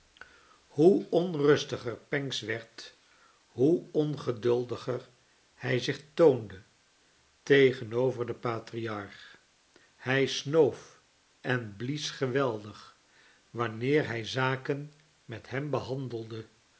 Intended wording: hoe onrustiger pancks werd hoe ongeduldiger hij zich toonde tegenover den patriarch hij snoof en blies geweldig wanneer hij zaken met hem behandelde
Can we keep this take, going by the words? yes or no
yes